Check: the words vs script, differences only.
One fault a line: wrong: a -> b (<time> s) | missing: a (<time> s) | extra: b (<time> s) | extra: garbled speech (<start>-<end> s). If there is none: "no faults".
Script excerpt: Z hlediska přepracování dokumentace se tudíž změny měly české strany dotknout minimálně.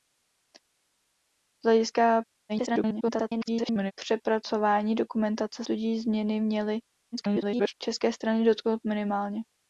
extra: garbled speech (2.5-3.9 s)
missing: se (5.6 s)
extra: garbled speech (7.1-7.7 s)